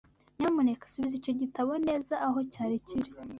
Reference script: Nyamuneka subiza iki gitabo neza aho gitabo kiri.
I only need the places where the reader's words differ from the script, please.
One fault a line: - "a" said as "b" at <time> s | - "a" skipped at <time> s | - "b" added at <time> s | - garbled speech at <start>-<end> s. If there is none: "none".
- "iki" said as "icyo" at 1.2 s
- "gitabo" said as "cyari" at 2.5 s